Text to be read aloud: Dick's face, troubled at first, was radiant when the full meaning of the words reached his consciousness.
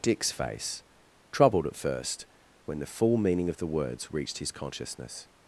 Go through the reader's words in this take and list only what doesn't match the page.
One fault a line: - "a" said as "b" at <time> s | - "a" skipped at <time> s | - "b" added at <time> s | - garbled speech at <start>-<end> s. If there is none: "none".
- "was radiant" skipped at 2.2 s